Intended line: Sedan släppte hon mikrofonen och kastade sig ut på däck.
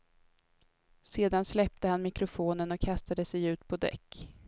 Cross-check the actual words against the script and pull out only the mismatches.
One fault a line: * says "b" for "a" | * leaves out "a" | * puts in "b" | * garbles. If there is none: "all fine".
* says "han" for "hon"